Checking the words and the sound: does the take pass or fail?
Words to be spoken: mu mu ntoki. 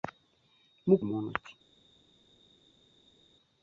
pass